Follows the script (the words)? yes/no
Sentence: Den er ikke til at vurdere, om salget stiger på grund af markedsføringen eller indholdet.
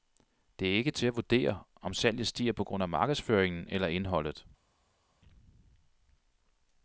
no